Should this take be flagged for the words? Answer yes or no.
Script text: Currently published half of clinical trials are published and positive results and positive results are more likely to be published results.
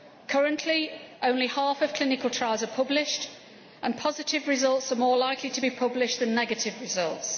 yes